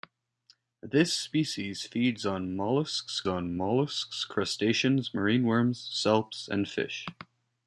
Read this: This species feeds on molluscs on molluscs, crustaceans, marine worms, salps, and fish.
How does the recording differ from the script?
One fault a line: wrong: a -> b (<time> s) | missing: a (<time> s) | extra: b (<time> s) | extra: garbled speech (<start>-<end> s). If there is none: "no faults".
no faults